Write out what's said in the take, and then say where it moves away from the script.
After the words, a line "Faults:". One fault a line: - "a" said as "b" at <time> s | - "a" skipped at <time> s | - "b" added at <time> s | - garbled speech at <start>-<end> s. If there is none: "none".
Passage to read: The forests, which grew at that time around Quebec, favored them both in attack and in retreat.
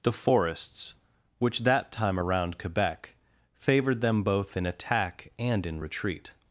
The forests, which that time around Quebec, favored them both in attack and in retreat.
Faults:
- "grew at" skipped at 1.6 s